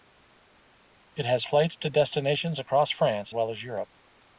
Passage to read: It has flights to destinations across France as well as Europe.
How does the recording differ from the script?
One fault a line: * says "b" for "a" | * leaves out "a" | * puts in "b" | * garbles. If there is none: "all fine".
* leaves out "as"